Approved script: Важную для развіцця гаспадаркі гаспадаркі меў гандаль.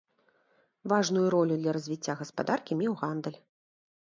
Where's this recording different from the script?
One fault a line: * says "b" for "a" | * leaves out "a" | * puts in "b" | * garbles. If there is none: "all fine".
* puts in "ролю"
* leaves out "гаспадаркі"